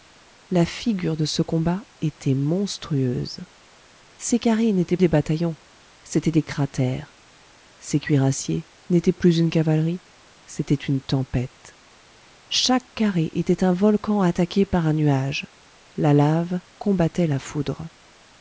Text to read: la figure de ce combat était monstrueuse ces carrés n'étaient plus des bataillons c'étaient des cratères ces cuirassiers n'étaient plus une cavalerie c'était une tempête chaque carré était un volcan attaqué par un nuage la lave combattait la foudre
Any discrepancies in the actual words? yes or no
yes